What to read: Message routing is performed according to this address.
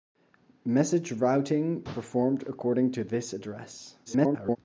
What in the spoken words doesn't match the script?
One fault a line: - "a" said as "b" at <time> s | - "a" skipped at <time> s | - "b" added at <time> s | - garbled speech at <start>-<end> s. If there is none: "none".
- "is" skipped at 1.8 s
- garbled speech at 4.1-4.6 s